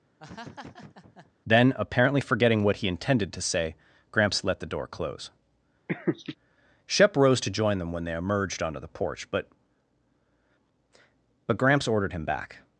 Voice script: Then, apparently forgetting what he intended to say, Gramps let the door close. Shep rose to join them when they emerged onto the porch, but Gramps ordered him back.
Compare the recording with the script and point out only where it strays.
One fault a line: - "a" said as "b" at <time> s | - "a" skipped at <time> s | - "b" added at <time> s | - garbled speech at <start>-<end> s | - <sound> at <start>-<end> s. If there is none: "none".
- laugh at 0.2-1.3 s
- laugh at 5.9-6.4 s
- "but" added at 11.5 s